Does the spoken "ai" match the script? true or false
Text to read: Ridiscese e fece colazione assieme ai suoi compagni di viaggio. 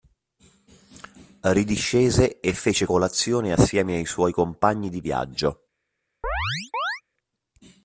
true